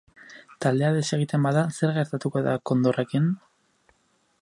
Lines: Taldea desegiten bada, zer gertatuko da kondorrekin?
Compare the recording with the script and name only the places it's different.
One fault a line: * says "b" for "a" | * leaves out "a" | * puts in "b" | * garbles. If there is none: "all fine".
all fine